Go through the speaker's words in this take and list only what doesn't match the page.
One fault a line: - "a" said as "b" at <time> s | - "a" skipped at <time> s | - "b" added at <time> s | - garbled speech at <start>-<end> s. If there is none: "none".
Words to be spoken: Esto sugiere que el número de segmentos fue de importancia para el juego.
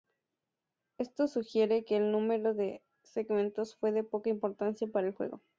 - "poca" added at 4.0 s